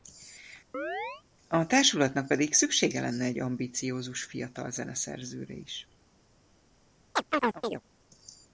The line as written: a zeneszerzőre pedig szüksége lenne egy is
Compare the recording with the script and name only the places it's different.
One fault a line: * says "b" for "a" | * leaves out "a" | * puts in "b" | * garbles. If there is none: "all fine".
* says "társulatnak" for "zeneszerzőre"
* puts in "ambiciózus fiatal zeneszerzőre"